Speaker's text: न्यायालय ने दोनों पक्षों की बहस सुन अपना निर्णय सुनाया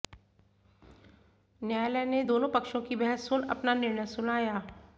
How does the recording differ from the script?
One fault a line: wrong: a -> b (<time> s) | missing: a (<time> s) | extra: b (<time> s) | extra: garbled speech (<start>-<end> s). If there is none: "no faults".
no faults